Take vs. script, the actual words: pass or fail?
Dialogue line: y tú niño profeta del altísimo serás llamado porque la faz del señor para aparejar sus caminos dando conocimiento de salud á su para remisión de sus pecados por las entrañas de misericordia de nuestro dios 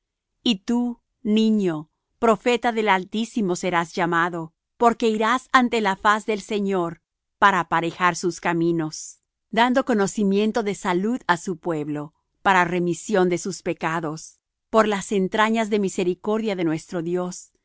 fail